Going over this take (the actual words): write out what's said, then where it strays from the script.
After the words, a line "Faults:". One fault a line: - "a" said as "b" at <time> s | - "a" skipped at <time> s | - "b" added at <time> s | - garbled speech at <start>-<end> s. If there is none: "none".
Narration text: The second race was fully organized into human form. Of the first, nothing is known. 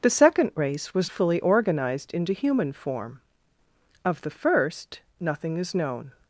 The second race was fully organized into human form. Of the first, nothing is known.
Faults:
none